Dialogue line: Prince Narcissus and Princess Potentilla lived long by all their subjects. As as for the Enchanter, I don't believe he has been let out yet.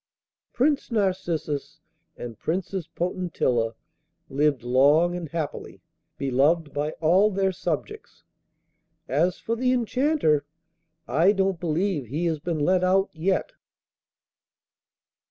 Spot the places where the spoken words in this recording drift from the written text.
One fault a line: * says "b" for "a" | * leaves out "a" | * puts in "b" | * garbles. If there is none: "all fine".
* puts in "and happily beloved"
* leaves out "as"